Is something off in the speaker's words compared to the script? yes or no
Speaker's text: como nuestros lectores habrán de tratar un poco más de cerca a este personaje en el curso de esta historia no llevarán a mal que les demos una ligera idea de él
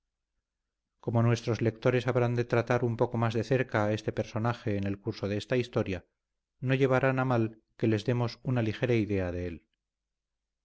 no